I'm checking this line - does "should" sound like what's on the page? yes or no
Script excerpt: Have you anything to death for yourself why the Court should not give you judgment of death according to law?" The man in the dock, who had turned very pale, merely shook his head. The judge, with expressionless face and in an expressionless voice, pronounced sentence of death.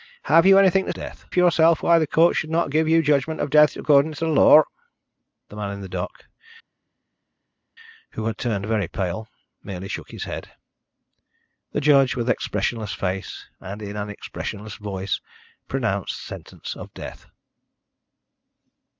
yes